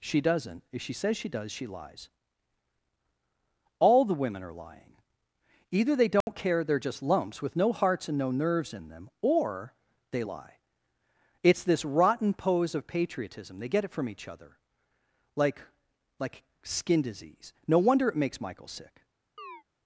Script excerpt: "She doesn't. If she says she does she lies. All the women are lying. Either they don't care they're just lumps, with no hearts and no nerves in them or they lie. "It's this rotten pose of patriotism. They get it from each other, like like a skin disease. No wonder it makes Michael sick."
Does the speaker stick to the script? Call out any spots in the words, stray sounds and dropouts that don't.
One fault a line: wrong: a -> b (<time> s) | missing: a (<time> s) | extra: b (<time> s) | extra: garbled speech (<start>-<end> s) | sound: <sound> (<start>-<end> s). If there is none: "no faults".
sound: dropout (6.2-6.3 s)
missing: a (16.4 s)
sound: chirp (19.4-19.6 s)